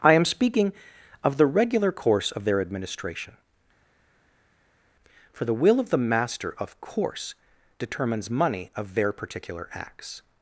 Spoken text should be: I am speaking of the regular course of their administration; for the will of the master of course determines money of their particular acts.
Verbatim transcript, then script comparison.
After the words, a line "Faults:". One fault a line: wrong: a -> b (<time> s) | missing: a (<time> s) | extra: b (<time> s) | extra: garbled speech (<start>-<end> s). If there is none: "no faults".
I am speaking of the regular course of their administration; for the will of the master of course determines money of their particular acts.
Faults:
no faults